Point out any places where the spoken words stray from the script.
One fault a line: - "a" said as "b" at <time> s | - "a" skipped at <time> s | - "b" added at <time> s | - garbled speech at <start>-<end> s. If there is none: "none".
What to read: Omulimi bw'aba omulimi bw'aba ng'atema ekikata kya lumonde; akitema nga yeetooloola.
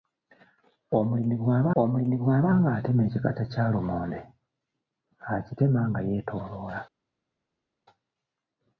none